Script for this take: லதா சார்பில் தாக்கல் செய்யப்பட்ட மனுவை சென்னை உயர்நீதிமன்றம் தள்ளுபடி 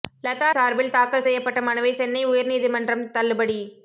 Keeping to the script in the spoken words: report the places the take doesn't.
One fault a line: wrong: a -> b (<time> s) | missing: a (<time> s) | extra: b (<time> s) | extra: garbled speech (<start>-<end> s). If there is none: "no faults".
no faults